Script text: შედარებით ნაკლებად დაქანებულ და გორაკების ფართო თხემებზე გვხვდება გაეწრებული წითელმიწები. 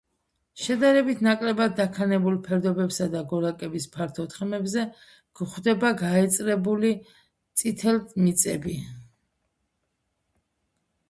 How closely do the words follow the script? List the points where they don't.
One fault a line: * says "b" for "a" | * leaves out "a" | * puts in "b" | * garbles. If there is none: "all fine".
* puts in "ფერდობებსა"